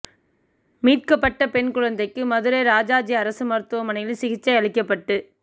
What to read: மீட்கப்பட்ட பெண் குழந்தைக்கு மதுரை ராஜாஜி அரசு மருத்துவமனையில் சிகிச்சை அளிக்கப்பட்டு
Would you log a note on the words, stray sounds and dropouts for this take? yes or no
no